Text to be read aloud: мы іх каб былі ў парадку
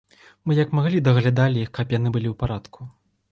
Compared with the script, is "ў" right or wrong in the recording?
right